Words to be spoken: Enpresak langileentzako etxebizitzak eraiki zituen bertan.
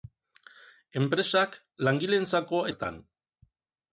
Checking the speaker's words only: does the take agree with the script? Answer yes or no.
no